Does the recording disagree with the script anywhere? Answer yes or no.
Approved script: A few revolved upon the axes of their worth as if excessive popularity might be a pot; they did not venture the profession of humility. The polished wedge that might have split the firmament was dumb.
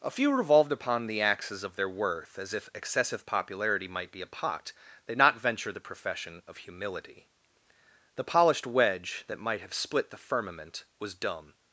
yes